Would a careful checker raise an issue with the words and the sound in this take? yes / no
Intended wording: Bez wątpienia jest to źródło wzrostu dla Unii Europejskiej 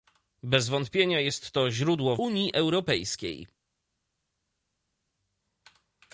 yes